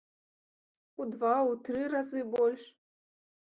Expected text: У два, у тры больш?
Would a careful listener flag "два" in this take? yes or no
no